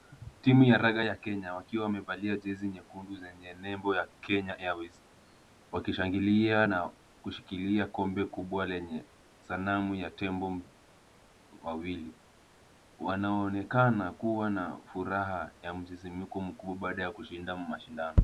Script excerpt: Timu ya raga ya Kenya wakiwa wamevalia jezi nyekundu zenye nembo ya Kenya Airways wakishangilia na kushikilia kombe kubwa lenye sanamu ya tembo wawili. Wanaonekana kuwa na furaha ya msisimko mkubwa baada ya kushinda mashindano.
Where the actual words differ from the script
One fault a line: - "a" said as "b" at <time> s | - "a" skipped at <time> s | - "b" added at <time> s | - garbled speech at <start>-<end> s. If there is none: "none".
none